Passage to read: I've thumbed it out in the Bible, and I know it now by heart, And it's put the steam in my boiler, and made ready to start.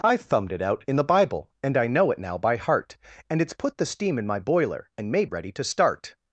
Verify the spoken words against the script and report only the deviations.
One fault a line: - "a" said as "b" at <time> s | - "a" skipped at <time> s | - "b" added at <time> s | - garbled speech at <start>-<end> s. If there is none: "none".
none